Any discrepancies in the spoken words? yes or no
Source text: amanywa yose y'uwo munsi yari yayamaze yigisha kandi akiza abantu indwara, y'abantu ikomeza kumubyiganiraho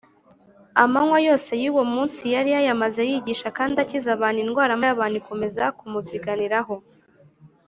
no